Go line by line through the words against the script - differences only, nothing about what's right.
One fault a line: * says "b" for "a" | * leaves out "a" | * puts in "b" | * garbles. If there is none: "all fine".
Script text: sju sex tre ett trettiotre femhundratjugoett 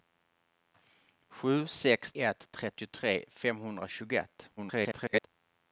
* leaves out "tre"
* garbles